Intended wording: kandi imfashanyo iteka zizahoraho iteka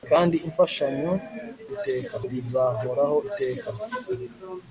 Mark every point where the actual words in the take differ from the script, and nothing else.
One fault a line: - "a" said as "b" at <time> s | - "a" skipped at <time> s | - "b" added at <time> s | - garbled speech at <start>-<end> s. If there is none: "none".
none